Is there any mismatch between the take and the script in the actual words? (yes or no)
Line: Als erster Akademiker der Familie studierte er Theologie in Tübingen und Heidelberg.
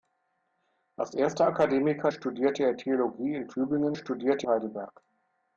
yes